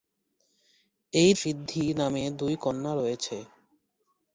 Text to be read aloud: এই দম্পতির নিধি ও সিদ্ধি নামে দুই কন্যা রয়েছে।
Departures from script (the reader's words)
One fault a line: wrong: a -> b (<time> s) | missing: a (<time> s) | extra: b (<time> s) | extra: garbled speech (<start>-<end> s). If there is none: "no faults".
missing: দম্পতির নিধি ও (1.3 s)